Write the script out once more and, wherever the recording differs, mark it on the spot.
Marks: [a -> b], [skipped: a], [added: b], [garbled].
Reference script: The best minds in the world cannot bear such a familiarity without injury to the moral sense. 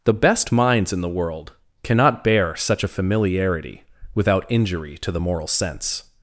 The best minds in the world cannot bear such a familiarity without injury to the moral sense.